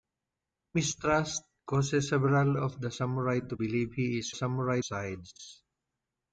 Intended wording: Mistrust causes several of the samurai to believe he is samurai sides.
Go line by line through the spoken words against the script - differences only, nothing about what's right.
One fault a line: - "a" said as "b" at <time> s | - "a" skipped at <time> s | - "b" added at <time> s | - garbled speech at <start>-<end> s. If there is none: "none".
none